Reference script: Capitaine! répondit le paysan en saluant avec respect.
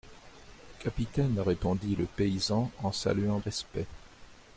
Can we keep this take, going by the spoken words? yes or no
no